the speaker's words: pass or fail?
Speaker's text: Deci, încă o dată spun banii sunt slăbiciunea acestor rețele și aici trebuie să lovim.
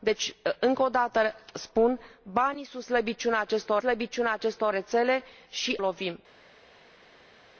fail